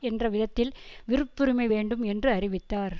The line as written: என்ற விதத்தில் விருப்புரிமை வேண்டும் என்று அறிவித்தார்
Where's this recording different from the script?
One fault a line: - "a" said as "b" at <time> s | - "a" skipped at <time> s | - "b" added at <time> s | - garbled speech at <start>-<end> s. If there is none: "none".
none